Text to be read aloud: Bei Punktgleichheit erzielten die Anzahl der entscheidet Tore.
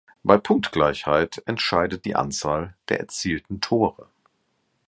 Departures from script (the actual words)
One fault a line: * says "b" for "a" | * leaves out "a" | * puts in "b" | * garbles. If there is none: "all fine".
* says "entscheidet" for "erzielten"
* says "erzielten" for "entscheidet"